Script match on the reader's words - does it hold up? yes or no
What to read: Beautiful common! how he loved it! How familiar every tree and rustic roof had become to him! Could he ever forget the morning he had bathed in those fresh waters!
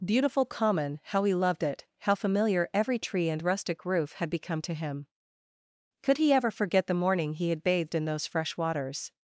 yes